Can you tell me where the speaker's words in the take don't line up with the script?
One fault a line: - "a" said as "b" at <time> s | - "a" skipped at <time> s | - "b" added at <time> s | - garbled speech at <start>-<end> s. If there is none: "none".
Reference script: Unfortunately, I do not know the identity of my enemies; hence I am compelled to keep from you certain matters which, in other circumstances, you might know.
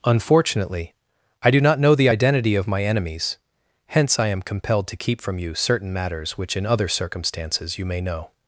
- "might" said as "may" at 7.8 s